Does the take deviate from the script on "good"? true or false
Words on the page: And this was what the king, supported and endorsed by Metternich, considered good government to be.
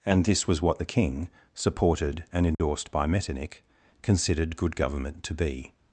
false